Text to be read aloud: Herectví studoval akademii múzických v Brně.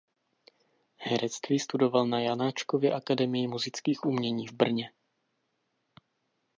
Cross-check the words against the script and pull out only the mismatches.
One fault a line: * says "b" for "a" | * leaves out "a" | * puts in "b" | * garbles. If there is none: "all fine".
* puts in "na Janáčkově"
* puts in "umění"